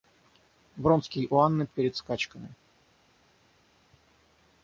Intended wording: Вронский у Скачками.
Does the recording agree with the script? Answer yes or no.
no